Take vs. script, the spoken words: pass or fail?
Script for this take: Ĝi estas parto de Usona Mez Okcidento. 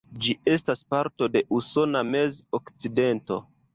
pass